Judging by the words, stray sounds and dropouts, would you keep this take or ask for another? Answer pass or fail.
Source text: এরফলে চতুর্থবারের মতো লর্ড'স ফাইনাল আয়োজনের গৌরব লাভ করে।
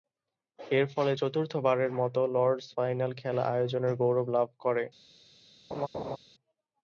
fail